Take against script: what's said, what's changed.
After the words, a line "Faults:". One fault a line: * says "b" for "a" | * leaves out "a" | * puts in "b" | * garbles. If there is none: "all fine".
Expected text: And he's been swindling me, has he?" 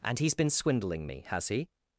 And he's been swindling me, has he?"
Faults:
all fine